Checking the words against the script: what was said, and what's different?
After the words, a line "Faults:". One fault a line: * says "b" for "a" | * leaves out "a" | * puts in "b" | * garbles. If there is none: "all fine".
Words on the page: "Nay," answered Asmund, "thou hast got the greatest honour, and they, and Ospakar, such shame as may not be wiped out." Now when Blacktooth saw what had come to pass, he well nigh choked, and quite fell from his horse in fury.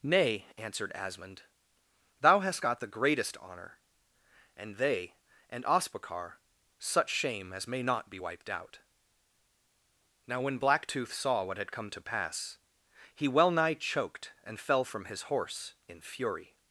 "Nay," answered Asmund, "thou hast got the greatest honour, and they, and Ospakar, such shame as may not be wiped out." Now when Blacktooth saw what had come to pass, he well nigh choked, and fell from his horse in fury.
Faults:
* leaves out "quite"